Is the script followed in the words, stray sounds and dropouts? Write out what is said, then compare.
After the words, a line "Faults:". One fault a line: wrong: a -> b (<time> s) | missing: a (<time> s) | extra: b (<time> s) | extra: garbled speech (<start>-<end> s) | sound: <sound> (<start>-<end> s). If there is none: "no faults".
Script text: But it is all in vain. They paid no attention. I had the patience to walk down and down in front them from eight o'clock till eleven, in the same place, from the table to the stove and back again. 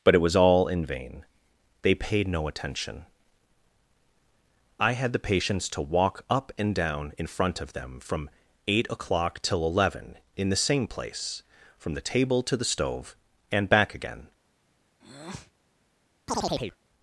But it was all in vain. They paid no attention. I had the patience to walk up and down in front of them from eight o'clock till eleven, in the same place, from the table to the stove and back again.
Faults:
wrong: is -> was (0.2 s)
wrong: down -> up (6.3 s)
extra: of (7.6 s)
sound: breath (15.0-15.5 s)
sound: chirp (16.3-16.8 s)